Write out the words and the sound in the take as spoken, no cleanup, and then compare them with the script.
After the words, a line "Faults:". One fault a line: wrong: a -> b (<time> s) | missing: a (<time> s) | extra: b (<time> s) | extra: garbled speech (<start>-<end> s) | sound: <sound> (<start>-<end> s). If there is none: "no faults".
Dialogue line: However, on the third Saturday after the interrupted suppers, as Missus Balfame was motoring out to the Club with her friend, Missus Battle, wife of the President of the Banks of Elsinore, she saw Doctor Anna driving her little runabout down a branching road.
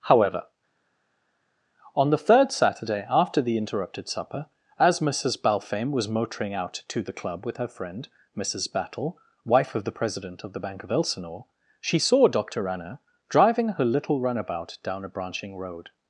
However, on the third Saturday after the interrupted supper, as Missus Balfame was motoring out to the Club with her friend, Missus Battle, wife of the President of the Bank of Elsinore, she saw Doctor Anna driving her little runabout down a branching road.
Faults:
wrong: suppers -> supper (4.1 s)
wrong: Banks -> Bank (10.6 s)